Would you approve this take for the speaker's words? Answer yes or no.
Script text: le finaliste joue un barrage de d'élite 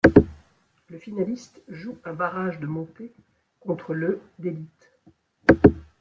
no